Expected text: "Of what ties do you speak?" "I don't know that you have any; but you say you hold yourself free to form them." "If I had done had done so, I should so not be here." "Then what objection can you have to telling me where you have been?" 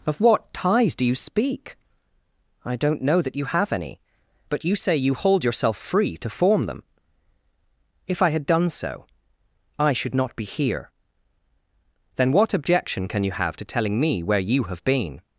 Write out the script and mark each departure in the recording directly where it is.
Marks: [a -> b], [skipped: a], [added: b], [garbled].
"Of what ties do you speak?" "I don't know that you have any; but you say you hold yourself free to form them." "If I had done [skipped: had done] so, I should [skipped: so] not be here." "Then what objection can you have to telling me where you have been?"